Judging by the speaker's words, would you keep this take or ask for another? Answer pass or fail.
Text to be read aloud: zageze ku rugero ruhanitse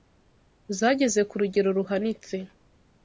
pass